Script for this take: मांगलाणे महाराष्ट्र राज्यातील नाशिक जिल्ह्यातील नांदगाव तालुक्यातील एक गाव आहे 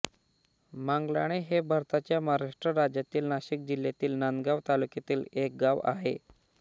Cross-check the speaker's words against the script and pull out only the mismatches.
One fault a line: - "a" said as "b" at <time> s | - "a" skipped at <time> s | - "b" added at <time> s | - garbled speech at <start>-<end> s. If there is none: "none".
- "हे भारताच्या" added at 1.4 s